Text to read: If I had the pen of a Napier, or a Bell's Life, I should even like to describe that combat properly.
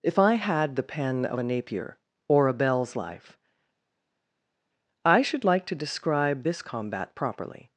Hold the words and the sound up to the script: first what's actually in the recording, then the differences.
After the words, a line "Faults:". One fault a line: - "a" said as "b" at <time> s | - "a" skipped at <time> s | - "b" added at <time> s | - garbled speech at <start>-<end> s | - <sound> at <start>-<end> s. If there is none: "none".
If I had the pen of a Napier, or a Bell's Life, I should like to describe this combat properly.
Faults:
- "even" skipped at 5.4 s
- "that" said as "this" at 6.4 s